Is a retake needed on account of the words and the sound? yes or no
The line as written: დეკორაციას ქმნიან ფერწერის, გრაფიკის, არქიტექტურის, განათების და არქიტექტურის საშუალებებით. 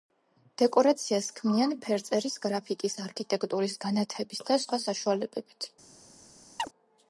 yes